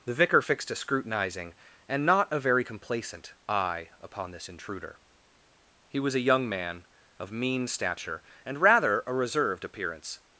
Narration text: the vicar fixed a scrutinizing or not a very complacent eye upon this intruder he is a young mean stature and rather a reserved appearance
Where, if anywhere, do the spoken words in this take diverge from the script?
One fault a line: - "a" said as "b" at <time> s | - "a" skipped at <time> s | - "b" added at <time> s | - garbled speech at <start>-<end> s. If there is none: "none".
- "or" said as "and" at 1.9 s
- "is" said as "was" at 6.0 s
- "man of" added at 6.5 s